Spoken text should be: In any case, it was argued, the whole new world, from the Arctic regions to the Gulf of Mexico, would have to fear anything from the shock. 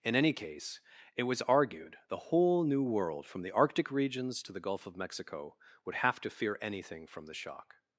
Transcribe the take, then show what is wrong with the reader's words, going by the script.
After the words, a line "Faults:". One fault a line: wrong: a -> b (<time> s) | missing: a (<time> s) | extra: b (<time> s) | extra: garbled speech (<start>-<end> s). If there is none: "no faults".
In any case, it was argued, the whole new world, from the Arctic regions to the Gulf of Mexico, would have to fear anything from the shock.
Faults:
no faults